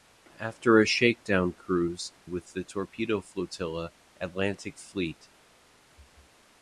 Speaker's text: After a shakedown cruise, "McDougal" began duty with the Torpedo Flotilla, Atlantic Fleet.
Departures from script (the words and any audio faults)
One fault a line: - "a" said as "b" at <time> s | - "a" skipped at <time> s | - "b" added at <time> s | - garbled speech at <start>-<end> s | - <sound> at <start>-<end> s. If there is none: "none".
- "McDougal began duty" skipped at 2.1 s